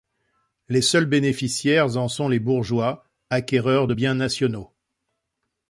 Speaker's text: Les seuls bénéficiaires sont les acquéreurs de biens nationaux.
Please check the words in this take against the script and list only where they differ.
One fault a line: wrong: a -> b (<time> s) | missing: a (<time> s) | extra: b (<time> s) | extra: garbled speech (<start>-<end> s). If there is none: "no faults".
extra: en (1.9 s)
extra: bourgeois (2.4 s)